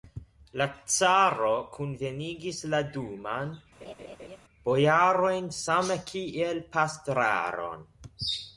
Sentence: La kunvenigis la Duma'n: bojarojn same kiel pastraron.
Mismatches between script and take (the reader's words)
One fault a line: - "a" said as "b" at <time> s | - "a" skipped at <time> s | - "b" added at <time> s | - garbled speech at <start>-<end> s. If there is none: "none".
- "caro" added at 0.9 s